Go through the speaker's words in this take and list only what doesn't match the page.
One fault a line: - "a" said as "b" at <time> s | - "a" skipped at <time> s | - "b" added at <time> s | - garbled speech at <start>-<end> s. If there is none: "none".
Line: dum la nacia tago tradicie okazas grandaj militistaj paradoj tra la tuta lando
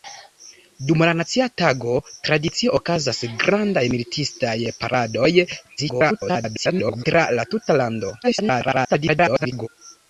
- garbled speech at 5.8-7.0 s
- garbled speech at 8.2-9.7 s